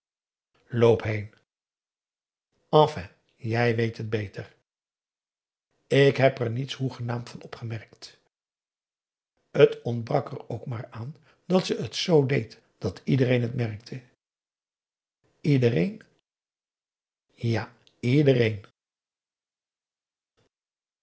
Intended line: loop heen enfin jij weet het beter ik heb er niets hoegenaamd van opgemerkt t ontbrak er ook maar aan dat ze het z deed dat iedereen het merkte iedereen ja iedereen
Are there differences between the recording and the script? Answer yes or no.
no